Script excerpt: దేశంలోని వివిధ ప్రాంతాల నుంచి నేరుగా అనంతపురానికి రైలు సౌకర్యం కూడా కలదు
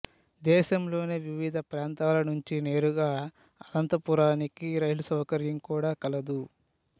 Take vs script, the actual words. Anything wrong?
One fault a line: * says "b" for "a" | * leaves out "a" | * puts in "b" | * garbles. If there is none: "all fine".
all fine